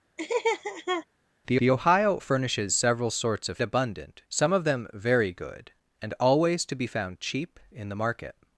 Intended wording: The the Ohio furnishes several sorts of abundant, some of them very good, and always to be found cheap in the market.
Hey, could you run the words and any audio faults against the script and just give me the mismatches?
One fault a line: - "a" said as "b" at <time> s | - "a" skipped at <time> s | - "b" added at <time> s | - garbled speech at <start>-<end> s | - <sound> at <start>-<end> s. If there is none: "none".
- laugh at 0.2-1.1 s